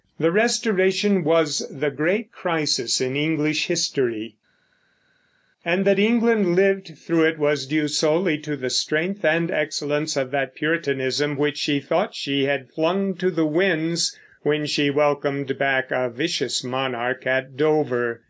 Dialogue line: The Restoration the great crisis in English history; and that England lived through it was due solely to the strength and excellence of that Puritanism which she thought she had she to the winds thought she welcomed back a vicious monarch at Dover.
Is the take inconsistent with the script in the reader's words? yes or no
yes